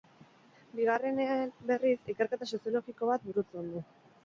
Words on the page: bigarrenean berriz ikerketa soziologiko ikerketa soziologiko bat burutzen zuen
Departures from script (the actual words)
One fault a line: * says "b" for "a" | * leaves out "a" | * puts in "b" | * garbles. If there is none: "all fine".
* leaves out "ikerketa soziologiko"
* says "du" for "zuen"